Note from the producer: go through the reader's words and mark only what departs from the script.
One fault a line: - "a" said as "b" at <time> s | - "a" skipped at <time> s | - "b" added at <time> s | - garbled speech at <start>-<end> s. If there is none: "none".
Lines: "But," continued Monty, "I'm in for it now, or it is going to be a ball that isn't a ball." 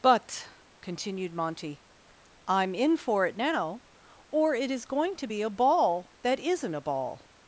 none